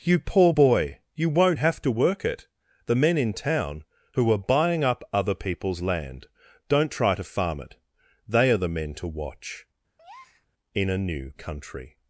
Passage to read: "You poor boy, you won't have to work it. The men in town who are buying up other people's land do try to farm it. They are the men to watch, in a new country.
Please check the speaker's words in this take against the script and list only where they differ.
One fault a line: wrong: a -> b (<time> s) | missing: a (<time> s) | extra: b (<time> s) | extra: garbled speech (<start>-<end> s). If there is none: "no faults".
wrong: do -> don't (6.7 s)